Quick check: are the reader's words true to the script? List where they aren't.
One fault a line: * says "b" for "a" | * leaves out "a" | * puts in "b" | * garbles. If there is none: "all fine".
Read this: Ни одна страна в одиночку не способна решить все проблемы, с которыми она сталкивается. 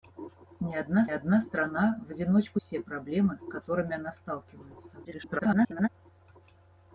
* puts in "одна"
* leaves out "не способна решить"
* garbles